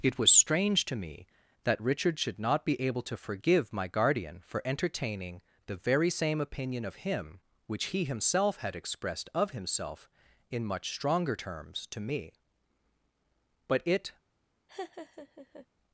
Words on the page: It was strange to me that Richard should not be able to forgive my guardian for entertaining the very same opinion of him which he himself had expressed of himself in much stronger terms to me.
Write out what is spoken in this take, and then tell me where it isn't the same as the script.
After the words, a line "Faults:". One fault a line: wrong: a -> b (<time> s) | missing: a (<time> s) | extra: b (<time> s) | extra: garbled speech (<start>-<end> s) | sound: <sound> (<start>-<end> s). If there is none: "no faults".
It was strange to me that Richard should not be able to forgive my guardian for entertaining the very same opinion of him which he himself had expressed of himself in much stronger terms to me. But it
Faults:
extra: But it (13.7 s)
sound: laugh (14.7-15.7 s)